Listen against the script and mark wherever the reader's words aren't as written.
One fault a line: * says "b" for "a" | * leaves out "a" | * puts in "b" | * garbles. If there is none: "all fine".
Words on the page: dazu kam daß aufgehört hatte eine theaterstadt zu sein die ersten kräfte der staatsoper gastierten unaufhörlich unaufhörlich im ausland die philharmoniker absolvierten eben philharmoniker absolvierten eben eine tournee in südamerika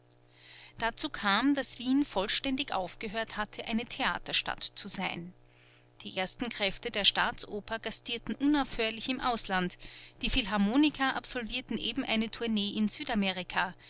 * puts in "wien vollständig"
* leaves out "unaufhörlich"
* leaves out "philharmoniker absolvierten eben"